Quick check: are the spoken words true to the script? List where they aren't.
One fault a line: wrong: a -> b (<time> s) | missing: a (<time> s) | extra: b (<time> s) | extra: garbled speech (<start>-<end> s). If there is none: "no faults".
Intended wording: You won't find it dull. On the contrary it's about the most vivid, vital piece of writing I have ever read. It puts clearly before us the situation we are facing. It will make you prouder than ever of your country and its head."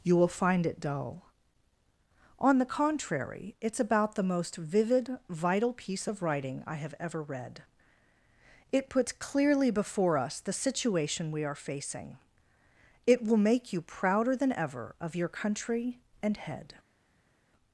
wrong: won't -> will (0.1 s)
missing: its (16.4 s)